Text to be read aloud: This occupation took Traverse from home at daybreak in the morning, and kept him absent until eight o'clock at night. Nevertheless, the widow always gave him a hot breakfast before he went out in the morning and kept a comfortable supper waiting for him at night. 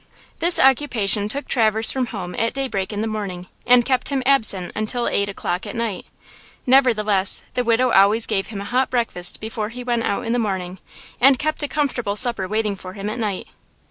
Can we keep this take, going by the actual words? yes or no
yes